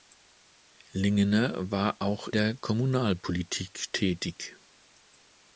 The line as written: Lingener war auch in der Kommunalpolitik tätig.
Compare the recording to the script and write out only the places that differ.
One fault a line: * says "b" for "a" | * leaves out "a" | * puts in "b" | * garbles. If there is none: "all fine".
* leaves out "in"